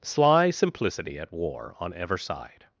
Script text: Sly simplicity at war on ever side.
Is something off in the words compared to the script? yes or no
no